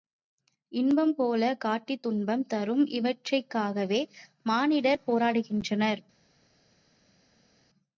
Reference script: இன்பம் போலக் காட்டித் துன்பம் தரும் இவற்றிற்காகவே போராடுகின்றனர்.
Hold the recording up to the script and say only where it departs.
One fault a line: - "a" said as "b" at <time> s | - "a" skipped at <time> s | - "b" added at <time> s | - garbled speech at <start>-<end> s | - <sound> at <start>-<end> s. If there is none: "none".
- "மானிடர்" added at 4.4 s